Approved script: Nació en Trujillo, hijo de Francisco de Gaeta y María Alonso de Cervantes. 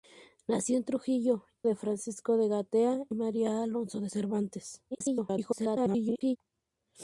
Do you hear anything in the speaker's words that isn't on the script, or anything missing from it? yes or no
yes